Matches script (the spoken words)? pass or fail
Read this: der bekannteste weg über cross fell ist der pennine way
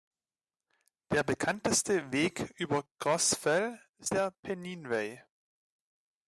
pass